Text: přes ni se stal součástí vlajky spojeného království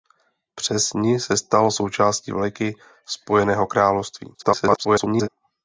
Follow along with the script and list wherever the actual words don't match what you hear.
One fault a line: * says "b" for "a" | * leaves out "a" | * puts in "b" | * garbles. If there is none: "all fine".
* garbles